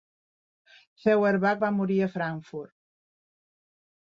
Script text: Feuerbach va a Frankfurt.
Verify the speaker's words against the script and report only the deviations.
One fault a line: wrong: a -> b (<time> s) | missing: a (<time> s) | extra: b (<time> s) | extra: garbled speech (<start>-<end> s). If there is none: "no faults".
extra: morir (1.8 s)